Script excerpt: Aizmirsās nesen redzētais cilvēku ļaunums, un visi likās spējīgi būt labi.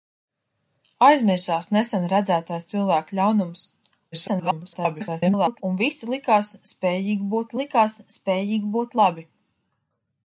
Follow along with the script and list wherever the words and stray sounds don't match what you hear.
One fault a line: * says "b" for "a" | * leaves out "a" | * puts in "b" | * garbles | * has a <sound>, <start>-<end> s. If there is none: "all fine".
* garbles
* puts in "likās spējīgi būt"